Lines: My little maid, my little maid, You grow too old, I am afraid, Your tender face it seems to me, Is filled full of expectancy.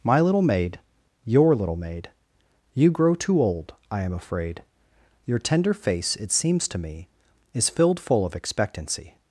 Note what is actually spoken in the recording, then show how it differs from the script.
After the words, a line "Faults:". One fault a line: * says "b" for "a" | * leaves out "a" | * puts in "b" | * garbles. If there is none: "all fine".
My little maid, your little maid, You grow too old, I am afraid, Your tender face it seems to me, Is filled full of expectancy.
Faults:
* says "your" for "my"